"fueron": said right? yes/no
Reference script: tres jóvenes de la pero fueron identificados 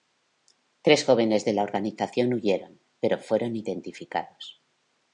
yes